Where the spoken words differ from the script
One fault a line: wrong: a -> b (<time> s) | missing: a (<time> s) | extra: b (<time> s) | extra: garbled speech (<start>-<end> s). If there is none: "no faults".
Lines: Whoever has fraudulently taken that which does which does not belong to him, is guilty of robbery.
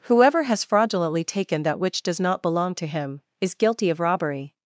missing: which does (2.2 s)